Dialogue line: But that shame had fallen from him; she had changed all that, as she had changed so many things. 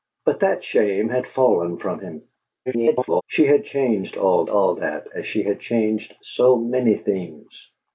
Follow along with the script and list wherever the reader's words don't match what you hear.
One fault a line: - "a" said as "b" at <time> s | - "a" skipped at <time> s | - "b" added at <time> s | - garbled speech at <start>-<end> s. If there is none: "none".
- garbled speech at 2.7-3.2 s
- "all" added at 4.5 s